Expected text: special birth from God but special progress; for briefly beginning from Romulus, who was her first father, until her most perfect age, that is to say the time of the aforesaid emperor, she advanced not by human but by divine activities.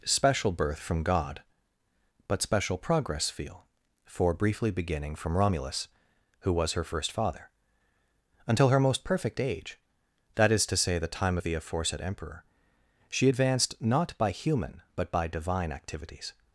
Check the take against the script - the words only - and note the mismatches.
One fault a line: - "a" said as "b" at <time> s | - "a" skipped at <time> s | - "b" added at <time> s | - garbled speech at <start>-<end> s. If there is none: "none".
- "feel" added at 3.3 s